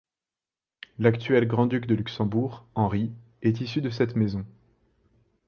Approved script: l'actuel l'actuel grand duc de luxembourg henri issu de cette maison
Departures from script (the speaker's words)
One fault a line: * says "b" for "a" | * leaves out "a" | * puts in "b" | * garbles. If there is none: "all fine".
* leaves out "l'actuel"
* puts in "est"